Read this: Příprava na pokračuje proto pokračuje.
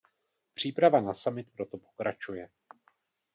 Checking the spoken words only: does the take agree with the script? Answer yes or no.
no